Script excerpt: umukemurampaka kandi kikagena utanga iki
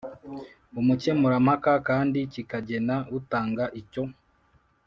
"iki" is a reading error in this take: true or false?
true